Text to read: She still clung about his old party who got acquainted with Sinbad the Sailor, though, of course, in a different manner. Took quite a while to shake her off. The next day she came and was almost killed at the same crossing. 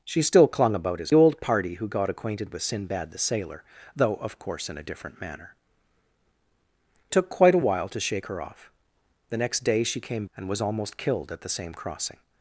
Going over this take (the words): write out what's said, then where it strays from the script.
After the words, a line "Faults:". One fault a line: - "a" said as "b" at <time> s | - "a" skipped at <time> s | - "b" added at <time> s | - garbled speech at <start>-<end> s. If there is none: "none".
She still clung about his old party who got acquainted with Sinbad the Sailor, though, of course, in a different manner. Took quite a while to shake her off. The next day she came and was almost killed at the same crossing.
Faults:
none